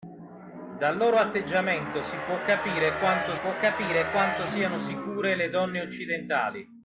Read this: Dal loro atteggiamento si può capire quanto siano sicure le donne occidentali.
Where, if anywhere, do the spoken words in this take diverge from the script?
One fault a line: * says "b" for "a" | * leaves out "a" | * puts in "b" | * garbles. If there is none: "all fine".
* puts in "può capire quanto"